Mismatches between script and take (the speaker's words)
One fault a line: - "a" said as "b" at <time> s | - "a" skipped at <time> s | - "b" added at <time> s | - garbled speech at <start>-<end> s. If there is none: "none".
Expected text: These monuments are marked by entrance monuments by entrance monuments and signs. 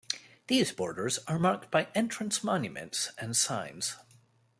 - "monuments" said as "borders" at 0.7 s
- "by entrance monuments" skipped at 3.1 s